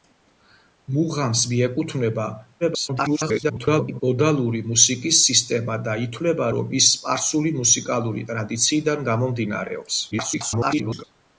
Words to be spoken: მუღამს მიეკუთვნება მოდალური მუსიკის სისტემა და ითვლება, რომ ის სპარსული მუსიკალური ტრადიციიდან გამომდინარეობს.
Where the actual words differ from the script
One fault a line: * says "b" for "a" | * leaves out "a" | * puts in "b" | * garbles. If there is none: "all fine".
* garbles
* garbles